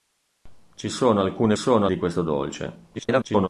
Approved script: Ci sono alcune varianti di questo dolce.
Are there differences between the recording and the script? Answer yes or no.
yes